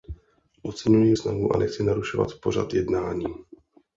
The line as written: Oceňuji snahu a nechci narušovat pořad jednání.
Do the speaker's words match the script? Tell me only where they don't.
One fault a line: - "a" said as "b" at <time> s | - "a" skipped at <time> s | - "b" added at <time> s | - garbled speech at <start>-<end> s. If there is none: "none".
none